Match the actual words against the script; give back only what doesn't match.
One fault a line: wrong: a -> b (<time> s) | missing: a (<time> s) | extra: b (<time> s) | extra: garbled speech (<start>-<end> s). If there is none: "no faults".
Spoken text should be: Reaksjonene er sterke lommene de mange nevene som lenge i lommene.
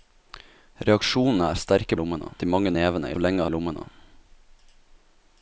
no faults